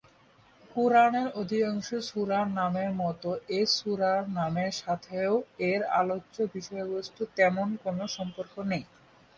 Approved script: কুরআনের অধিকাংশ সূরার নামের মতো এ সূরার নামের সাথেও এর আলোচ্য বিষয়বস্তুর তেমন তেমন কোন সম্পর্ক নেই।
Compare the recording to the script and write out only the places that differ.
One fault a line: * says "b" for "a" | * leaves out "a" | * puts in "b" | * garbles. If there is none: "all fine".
* leaves out "তেমন"